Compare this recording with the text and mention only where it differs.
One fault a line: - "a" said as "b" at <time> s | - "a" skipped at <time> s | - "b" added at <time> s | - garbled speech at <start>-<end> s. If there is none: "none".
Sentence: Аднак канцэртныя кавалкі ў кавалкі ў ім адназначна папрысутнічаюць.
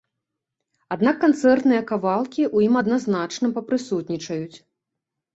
- "кавалкі ў" skipped at 2.7 s